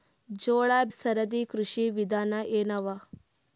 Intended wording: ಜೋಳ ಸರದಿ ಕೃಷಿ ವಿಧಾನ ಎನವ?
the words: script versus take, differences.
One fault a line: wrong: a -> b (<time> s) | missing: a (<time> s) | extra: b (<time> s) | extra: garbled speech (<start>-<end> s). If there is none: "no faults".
no faults